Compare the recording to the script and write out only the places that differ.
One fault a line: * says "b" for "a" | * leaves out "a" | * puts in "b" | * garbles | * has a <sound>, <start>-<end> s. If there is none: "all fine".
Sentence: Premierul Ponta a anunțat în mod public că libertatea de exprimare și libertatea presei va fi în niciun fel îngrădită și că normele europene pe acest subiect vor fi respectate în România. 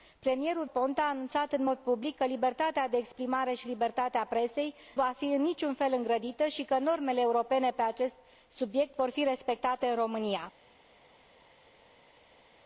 all fine